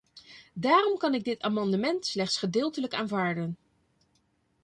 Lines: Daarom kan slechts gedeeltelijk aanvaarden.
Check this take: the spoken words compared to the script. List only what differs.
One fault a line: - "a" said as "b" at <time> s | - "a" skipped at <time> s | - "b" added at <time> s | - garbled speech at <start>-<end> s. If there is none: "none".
- "ik dit amendement" added at 1.1 s